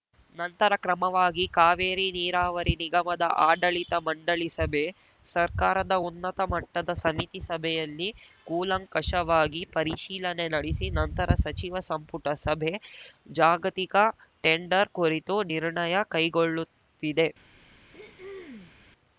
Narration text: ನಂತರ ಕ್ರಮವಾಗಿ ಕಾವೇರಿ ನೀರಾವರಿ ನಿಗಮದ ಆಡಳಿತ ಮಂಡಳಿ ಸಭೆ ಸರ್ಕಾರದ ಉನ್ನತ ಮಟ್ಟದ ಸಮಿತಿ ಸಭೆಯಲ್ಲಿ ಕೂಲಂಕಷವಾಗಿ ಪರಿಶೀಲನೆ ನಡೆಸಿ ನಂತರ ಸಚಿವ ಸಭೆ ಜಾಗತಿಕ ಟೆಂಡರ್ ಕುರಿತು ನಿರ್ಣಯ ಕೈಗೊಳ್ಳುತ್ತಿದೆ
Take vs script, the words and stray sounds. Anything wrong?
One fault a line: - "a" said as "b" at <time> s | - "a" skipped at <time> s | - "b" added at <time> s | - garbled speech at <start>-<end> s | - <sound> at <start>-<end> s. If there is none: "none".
- "ಸಂಪುಟ" added at 11.9 s
- throat clearing at 17.9-18.7 s